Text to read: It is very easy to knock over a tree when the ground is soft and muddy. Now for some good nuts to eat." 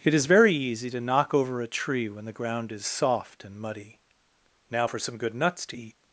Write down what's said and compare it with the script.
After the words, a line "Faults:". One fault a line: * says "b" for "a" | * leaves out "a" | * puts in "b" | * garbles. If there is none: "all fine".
It is very easy to knock over a tree when the ground is soft and muddy. Now for some good nuts to eat."
Faults:
all fine